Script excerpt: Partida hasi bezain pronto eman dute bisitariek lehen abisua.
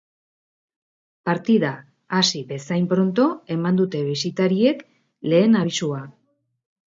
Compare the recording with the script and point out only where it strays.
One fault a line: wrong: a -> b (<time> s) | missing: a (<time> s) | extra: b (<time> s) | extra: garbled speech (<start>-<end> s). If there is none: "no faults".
no faults